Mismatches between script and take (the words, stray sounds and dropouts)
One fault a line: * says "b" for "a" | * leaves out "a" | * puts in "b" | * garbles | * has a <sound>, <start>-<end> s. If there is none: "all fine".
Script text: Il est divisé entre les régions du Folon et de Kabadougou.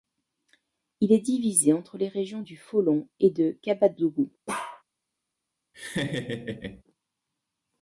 * has a bark, 4.5-4.8 s
* has a laugh, 5.7-6.8 s